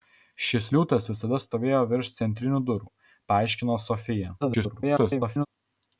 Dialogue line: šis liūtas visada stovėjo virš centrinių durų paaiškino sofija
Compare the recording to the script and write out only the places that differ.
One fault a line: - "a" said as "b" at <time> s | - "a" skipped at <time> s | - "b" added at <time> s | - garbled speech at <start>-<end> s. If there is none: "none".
- garbled speech at 4.4-5.5 s